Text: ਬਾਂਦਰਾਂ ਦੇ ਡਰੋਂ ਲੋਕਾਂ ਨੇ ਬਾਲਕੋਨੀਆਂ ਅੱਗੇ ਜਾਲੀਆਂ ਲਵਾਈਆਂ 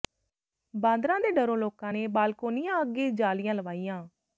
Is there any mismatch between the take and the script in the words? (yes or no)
no